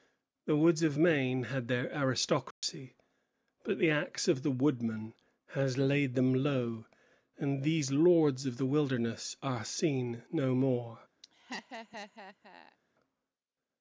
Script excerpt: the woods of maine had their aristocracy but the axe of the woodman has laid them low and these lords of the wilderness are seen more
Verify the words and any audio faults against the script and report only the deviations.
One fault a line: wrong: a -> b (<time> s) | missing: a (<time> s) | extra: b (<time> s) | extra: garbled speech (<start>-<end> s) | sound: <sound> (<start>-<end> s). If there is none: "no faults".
sound: dropout (2.5-2.6 s)
extra: no (10.3 s)
sound: laugh (11.2-12.8 s)